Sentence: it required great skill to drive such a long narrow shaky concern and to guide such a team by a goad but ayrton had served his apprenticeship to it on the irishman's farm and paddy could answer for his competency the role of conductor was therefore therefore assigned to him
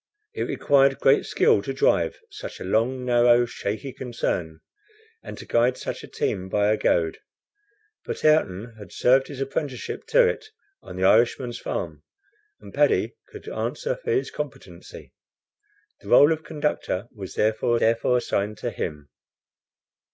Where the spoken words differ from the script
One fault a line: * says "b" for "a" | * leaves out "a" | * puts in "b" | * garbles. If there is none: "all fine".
all fine